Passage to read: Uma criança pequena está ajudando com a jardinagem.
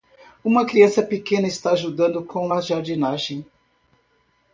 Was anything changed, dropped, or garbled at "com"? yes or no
no